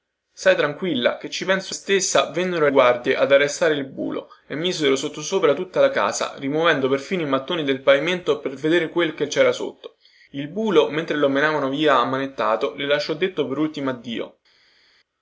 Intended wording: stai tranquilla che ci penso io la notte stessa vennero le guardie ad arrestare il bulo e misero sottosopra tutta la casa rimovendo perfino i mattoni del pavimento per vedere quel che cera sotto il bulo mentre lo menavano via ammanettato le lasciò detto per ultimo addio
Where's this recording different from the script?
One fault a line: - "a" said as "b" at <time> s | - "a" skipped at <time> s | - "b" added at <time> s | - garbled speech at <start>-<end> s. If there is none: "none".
- "io la notte" skipped at 1.8 s
- "le" skipped at 2.7 s